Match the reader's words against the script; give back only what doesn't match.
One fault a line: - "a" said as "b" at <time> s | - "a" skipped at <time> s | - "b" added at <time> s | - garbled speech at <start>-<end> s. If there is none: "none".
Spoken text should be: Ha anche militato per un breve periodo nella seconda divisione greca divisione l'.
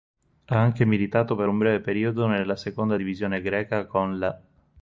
- "divisione" said as "con" at 3.9 s